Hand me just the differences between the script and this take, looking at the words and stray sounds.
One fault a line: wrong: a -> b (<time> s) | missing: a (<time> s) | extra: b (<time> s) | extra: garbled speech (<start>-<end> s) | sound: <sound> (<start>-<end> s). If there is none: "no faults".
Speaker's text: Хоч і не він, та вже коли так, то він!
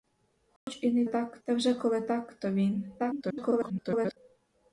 sound: dropout (0.6-0.7 s)
wrong: він -> так (1.1 s)
extra: garbled speech (3.0-4.2 s)